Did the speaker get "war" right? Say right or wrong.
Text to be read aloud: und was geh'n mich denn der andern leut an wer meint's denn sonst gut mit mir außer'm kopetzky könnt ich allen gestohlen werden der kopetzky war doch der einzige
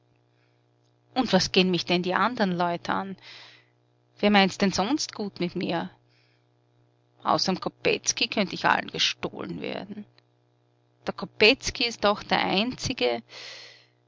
wrong